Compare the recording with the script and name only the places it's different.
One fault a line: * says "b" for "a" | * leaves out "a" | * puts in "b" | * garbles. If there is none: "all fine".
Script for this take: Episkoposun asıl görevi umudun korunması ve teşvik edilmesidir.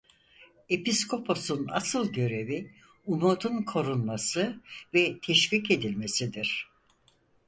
all fine